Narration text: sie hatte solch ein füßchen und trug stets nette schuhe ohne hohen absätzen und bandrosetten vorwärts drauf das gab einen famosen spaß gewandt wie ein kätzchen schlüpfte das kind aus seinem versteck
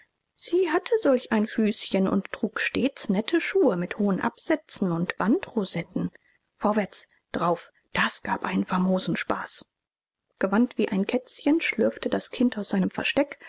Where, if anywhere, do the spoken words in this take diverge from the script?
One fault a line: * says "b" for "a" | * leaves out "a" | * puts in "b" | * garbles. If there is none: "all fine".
* says "mit" for "ohne"